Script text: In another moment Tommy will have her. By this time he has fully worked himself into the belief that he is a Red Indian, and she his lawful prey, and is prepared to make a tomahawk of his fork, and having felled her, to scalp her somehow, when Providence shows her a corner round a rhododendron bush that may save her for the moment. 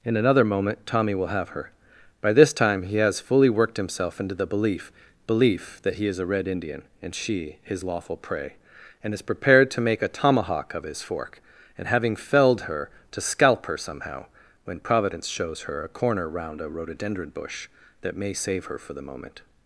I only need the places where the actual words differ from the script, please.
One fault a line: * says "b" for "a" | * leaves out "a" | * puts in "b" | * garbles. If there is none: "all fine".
* puts in "belief"